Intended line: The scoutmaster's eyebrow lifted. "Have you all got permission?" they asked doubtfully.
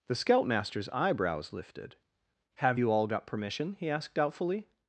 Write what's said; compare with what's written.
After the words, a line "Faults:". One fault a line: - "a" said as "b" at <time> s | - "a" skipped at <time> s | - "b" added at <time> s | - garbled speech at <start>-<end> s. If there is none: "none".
The scoutmaster's eyebrows lifted. "Have you all got permission?" he asked doubtfully.
Faults:
- "eyebrow" said as "eyebrows" at 0.9 s
- "they" said as "he" at 3.7 s